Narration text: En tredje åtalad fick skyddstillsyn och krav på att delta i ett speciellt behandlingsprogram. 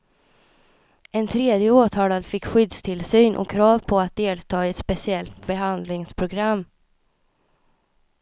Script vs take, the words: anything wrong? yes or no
no